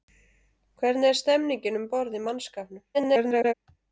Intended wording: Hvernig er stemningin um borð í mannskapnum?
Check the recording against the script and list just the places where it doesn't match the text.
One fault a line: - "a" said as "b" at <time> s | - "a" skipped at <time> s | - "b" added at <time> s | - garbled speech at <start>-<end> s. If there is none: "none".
- garbled speech at 2.9-3.5 s